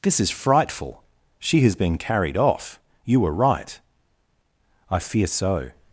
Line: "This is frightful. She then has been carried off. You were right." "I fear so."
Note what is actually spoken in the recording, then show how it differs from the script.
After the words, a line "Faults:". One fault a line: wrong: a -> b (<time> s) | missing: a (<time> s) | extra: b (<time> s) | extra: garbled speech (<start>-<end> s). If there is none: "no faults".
"This is frightful. She has been carried off. You were right." "I fear so."
Faults:
missing: then (1.6 s)